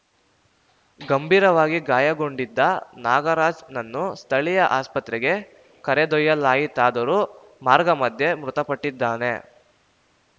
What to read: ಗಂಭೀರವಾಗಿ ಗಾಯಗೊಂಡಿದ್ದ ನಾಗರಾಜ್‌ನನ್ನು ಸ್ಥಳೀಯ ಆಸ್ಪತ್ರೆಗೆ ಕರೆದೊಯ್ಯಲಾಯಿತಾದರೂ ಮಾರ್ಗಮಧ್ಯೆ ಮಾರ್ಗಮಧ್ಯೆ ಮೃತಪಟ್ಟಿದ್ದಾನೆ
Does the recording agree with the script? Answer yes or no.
no